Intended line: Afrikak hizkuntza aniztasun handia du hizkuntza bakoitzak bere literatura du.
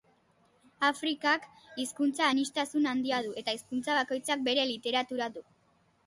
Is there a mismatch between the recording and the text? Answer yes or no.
yes